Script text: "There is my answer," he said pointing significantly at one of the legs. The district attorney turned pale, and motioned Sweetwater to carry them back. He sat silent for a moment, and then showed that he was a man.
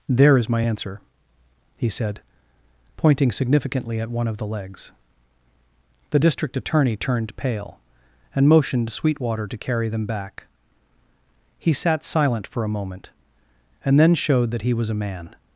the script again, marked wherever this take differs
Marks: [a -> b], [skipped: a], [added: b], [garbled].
"There is my answer," he said pointing significantly at one of the legs. The district attorney turned pale, and motioned Sweetwater to carry them back. He sat silent for a moment, and then showed that he was a man.